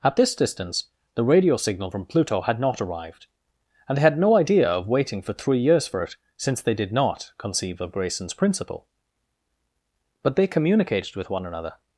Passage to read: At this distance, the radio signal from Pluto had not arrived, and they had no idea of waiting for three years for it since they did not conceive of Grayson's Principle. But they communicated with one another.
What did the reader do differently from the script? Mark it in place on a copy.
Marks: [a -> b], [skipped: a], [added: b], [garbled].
At this distance, the radio signal from Pluto had not arrived, and they had no idea of waiting for three years for it since they did not conceive of Grayson's Principle. But they communicated with one another.